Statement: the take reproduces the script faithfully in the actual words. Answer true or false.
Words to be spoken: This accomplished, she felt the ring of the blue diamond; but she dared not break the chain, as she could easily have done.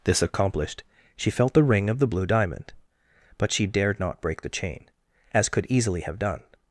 false